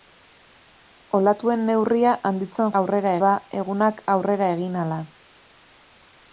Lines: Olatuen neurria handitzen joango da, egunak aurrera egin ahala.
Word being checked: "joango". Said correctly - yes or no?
no